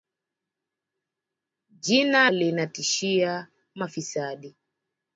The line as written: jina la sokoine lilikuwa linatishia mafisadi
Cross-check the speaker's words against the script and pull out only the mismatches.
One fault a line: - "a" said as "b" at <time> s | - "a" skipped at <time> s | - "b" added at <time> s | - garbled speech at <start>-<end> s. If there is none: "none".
- "la sokoine lilikuwa" skipped at 2.3 s